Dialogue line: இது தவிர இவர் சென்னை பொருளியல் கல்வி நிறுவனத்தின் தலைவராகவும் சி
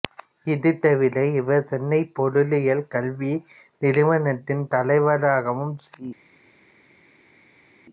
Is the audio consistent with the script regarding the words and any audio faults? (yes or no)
yes